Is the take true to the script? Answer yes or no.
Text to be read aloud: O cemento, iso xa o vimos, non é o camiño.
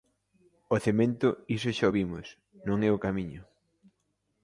yes